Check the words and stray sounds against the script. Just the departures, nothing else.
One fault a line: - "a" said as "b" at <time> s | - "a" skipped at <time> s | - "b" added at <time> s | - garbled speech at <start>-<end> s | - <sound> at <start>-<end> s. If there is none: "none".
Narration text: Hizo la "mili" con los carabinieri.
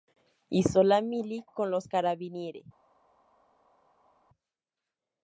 none